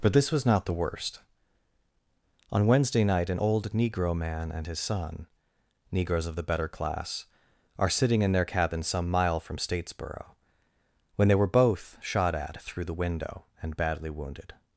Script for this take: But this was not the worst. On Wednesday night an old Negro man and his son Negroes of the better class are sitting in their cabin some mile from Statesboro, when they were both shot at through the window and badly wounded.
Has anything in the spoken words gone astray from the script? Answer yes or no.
no